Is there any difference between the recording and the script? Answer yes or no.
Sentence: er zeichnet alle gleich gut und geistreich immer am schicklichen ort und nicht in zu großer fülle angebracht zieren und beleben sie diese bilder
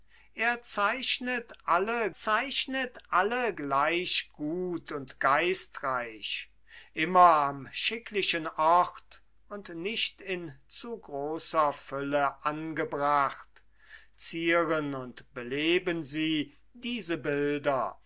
yes